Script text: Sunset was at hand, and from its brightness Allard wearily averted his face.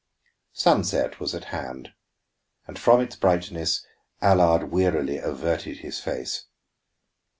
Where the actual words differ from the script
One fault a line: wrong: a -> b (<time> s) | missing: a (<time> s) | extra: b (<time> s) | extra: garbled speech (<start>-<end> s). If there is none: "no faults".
no faults